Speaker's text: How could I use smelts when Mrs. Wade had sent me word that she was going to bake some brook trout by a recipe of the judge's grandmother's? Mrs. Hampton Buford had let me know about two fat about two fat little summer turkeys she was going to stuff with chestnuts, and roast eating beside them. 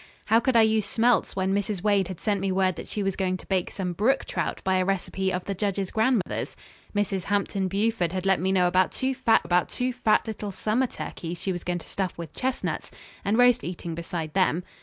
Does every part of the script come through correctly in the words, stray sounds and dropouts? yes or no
no